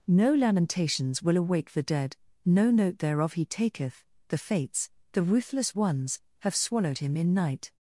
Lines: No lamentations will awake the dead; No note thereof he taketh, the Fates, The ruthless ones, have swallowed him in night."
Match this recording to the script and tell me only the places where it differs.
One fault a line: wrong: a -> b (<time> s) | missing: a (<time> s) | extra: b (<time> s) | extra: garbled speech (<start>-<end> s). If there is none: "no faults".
no faults